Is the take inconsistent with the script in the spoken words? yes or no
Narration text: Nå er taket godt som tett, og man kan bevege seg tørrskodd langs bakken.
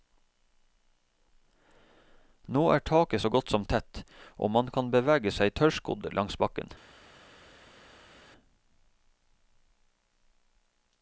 yes